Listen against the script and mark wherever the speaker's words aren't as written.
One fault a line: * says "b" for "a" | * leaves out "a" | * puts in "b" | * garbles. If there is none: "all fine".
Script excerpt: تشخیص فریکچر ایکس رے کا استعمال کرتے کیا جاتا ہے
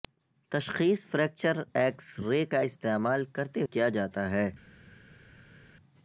all fine